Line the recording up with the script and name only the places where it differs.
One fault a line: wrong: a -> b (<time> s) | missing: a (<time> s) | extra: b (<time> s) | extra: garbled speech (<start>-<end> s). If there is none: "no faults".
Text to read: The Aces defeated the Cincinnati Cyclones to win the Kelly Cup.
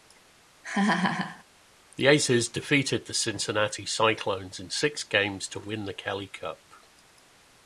extra: in six games (4.6 s)